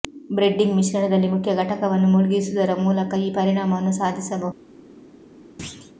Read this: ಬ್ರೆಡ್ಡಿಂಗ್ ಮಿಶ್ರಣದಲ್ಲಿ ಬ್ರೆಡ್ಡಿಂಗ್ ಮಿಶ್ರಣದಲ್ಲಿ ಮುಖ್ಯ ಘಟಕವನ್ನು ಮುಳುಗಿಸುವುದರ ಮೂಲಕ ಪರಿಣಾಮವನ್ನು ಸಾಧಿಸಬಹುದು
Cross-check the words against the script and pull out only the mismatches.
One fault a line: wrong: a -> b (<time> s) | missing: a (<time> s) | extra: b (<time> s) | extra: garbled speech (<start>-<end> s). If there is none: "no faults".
missing: ಬ್ರೆಡ್ಡಿಂಗ್ ಮಿಶ್ರಣದಲ್ಲಿ (1.3 s)
extra: ಈ (3.2 s)